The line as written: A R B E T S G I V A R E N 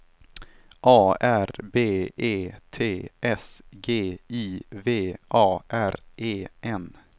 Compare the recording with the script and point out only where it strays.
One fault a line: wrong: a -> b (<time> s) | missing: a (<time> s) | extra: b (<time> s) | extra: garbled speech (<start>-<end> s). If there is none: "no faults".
no faults